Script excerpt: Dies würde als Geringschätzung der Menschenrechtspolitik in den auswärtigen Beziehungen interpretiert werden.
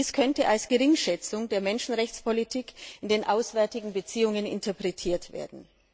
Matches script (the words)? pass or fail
fail